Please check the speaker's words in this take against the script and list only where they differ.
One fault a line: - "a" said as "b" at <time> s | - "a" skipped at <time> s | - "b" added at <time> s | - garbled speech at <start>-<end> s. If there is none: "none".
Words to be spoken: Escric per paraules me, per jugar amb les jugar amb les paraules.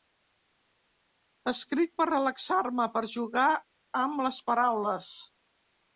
- "paraules" said as "relaxar" at 2.1 s
- "jugar amb les" skipped at 4.4 s